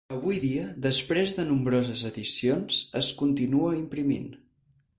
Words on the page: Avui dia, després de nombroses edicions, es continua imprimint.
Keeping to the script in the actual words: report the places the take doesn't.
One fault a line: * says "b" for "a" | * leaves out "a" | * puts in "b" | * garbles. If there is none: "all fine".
all fine